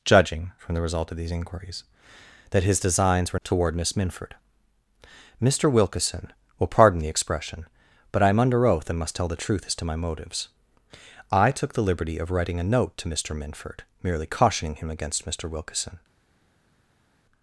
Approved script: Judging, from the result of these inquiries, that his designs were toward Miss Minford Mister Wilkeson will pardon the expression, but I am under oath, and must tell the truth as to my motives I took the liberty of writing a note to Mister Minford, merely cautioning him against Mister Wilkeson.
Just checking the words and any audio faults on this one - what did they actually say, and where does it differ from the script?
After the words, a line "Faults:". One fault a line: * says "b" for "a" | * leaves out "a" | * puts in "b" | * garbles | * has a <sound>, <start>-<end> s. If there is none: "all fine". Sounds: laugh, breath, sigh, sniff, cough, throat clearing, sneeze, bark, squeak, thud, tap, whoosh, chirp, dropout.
Judging, from the result of these inquiries, that his designs were toward Miss Minford Mister Wilkeson will pardon the expression, but I am under oath, and must tell the truth as to my motives I took the liberty of writing a note to Mister Minford, merely cautioning him against Mister Wilkeson.
Faults:
all fine